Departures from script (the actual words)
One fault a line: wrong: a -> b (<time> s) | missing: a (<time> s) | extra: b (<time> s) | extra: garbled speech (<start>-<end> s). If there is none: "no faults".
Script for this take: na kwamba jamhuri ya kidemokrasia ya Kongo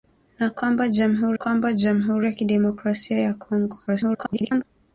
extra: kwamba jamhuri (1.3 s)
extra: garbled speech (3.9-4.6 s)